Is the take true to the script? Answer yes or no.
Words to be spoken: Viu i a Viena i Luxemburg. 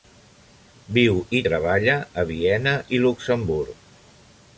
no